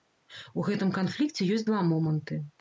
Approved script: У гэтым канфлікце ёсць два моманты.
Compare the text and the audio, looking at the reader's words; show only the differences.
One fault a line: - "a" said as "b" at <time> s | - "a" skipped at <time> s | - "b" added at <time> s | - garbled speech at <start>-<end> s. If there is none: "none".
none